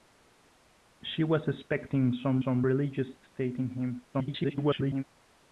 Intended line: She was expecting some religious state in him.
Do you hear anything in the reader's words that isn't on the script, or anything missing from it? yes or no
yes